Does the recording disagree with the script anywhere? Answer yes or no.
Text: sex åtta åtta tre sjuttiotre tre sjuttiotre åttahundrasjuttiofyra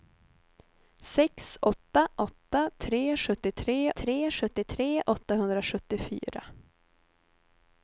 no